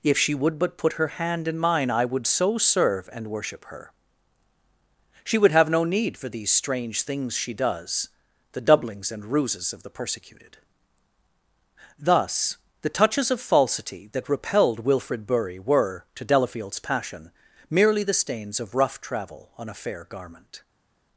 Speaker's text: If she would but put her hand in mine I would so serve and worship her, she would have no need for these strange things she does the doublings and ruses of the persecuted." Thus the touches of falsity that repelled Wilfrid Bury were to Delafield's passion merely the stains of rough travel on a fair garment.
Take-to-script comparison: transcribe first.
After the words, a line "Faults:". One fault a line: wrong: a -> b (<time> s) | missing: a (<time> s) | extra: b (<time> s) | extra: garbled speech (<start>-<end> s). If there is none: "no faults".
If she would but put her hand in mine I would so serve and worship her, she would have no need for these strange things she does the doublings and ruses of the persecuted." Thus the touches of falsity that repelled Wilfrid Bury were to Delafield's passion merely the stains of rough travel on a fair garment.
Faults:
no faults